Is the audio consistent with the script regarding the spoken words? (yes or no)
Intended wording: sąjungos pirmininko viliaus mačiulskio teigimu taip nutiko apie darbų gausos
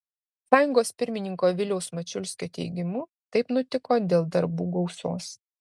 no